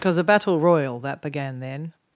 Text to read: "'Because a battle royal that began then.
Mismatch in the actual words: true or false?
false